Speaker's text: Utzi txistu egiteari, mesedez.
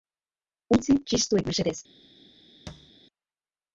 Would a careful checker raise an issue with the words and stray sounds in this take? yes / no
yes